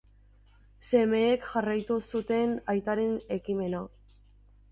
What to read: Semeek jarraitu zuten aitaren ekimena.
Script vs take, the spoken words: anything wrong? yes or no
no